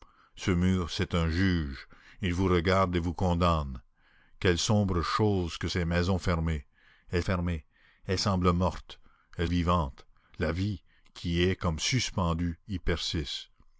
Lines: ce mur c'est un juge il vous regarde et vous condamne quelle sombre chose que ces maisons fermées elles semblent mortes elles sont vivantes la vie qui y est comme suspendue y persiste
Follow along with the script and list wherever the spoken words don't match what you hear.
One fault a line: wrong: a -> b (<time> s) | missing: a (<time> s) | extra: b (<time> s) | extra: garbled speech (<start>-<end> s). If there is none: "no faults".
extra: fermées elles (7.2 s)
missing: sont (9.5 s)